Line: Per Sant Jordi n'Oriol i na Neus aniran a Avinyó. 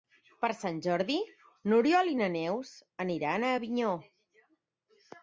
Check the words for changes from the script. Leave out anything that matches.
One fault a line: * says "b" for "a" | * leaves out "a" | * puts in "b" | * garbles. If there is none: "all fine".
all fine